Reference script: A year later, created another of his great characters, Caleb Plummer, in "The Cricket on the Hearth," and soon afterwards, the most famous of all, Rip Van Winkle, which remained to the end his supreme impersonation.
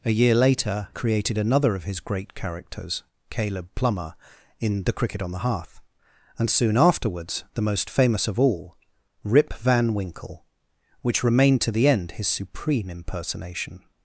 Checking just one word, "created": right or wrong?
right